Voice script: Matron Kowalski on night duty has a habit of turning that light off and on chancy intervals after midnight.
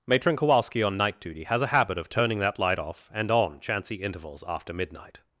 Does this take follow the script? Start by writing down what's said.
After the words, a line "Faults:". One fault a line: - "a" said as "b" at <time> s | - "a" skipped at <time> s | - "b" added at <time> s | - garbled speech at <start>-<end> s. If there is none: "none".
Matron Kowalski on night duty has a habit of turning that light off and on chancy intervals after midnight.
Faults:
none